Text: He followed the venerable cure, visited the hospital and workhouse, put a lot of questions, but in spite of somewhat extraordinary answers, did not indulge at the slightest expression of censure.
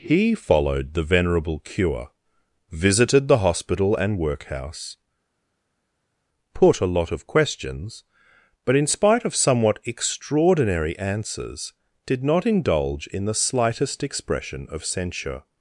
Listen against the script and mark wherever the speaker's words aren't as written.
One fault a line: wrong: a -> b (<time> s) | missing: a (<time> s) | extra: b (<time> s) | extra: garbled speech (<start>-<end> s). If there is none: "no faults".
wrong: at -> in (13.1 s)